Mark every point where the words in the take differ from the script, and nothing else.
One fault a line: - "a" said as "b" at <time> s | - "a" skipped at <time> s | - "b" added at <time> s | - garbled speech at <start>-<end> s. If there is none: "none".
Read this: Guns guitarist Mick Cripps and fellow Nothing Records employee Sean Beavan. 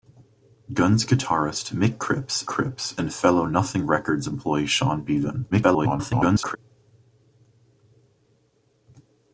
- "Cripps" added at 2.4 s
- garbled speech at 5.5-6.6 s